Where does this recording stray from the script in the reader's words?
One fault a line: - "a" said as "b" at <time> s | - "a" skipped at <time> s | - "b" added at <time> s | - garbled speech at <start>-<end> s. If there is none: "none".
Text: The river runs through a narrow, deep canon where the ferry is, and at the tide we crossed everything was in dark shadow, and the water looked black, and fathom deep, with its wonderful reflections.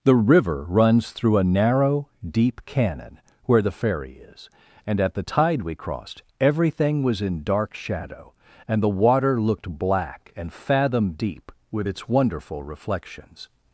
none